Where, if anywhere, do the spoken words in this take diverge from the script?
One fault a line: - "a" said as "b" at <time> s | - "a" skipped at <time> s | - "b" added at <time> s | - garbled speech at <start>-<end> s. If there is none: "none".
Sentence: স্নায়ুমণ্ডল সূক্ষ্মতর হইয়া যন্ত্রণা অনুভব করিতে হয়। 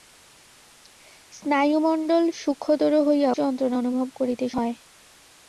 none